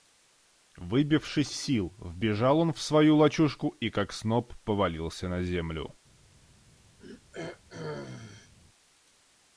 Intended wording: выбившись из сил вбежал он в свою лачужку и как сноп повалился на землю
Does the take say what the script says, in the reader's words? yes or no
no